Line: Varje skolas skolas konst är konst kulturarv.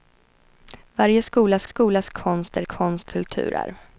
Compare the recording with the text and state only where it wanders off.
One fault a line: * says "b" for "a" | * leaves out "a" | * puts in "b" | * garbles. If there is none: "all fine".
all fine